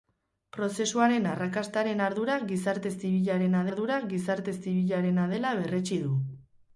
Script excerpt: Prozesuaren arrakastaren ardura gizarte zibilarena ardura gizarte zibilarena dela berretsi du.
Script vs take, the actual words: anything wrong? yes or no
no